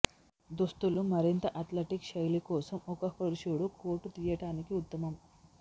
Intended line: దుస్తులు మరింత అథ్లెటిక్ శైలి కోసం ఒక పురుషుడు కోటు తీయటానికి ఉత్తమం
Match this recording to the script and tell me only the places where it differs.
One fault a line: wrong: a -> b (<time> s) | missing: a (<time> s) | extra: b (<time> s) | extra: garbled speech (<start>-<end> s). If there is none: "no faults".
no faults